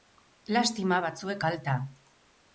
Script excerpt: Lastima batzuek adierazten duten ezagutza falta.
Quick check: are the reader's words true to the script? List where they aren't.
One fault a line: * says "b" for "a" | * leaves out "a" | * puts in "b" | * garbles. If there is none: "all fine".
* leaves out "adierazten duten ezagutza"